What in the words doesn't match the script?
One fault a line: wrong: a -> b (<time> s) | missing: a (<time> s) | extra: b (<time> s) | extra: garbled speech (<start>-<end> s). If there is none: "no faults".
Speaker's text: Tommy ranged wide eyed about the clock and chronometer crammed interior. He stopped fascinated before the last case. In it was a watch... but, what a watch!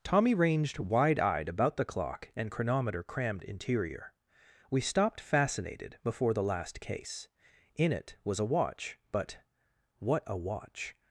wrong: He -> We (4.7 s)